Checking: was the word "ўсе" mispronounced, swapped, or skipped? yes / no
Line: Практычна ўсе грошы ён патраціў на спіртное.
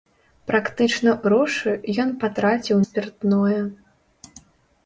yes